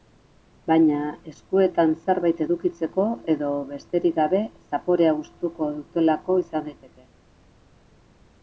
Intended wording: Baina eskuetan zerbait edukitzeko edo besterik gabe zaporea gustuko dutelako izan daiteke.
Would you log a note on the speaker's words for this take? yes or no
no